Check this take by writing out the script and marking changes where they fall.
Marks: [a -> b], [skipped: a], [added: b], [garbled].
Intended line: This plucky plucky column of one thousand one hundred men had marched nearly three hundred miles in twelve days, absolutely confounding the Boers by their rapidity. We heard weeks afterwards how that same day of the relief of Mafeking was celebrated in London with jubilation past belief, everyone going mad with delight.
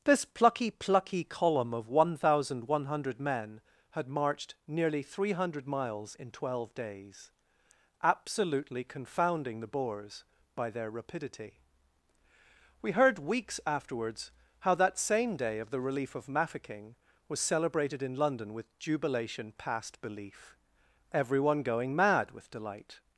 This plucky plucky column of one thousand one hundred men had marched nearly three hundred miles in twelve days, absolutely confounding the Boers by their rapidity. We heard weeks afterwards how that same day of the relief of Mafeking was celebrated in London with jubilation past belief, everyone going mad with delight.